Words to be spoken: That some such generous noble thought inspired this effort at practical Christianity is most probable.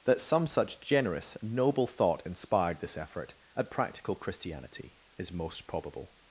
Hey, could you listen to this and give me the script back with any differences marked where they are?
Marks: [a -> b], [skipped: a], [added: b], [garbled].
That some such generous noble thought inspired this effort at practical Christianity is most probable.